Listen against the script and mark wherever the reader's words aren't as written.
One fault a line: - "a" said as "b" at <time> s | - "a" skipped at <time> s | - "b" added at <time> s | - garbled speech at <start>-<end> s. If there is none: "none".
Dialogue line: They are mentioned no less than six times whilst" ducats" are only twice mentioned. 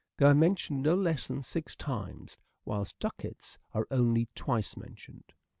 none